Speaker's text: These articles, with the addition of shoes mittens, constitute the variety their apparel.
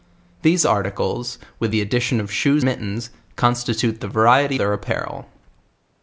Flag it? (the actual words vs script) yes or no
no